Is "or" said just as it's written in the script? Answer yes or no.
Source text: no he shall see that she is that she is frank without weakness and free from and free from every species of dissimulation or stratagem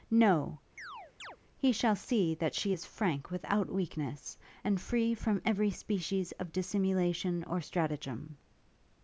yes